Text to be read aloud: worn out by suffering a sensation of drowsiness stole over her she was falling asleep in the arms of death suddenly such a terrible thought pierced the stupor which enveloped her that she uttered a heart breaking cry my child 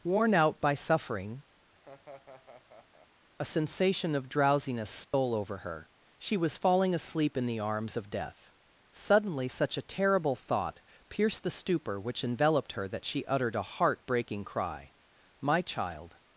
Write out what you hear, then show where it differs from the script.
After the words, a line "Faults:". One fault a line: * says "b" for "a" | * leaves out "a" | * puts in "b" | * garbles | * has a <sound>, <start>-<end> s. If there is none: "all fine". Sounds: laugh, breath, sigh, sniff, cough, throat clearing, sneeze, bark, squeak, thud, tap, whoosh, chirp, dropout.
worn out by suffering a sensation of drowsiness stole over her she was falling asleep in the arms of death suddenly such a terrible thought pierced the stupor which enveloped her that she uttered a heart breaking cry my child
Faults:
* has a laugh, 1.7-3.1 s
* has a dropout, 5.0-5.1 s